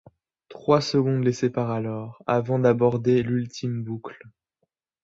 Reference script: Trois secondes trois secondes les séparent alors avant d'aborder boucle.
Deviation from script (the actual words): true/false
true